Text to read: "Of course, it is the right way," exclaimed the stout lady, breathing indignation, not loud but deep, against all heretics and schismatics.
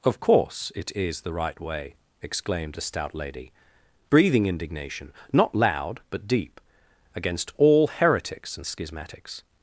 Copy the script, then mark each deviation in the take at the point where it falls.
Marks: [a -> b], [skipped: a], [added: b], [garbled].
"Of course, it is the right way," exclaimed [the -> a] stout lady, breathing indignation, not loud but deep, against all heretics and schismatics.